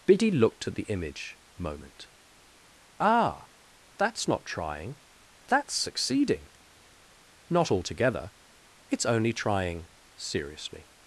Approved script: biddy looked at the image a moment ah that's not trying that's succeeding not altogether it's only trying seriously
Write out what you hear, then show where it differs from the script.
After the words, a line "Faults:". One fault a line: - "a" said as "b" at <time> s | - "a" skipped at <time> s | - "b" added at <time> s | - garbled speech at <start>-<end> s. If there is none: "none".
biddy looked at the image moment ah that's not trying that's succeeding not altogether it's only trying seriously
Faults:
- "a" skipped at 1.4 s